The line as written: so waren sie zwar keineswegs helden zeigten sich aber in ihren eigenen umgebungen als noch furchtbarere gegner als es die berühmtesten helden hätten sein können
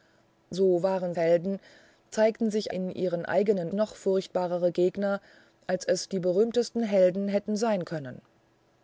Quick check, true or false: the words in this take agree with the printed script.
false